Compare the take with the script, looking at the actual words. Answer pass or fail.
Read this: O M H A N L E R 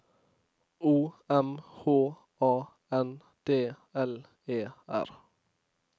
fail